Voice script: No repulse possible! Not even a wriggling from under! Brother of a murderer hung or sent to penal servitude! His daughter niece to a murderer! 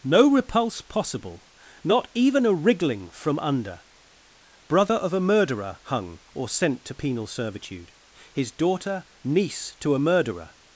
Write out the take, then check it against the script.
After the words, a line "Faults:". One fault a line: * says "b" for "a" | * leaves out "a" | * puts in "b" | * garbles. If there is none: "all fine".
No repulse possible! Not even a wriggling from under! Brother of a murderer hung or sent to penal servitude! His daughter niece to a murderer!
Faults:
all fine